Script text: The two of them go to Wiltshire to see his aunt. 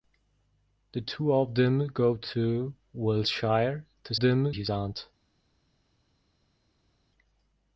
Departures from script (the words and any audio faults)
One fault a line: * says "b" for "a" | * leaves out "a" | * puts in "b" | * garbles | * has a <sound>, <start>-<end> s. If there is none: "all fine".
* says "them" for "see"